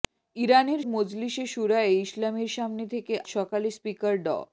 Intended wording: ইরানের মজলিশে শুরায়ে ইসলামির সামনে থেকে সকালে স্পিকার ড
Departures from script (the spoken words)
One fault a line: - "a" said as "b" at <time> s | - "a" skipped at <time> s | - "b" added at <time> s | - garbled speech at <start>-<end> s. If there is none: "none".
none